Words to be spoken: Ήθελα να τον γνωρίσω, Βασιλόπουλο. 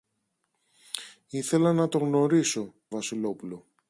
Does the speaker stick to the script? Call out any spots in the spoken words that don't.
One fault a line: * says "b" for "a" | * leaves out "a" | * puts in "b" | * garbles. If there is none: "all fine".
all fine